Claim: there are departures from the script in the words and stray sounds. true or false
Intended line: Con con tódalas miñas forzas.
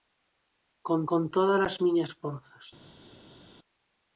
false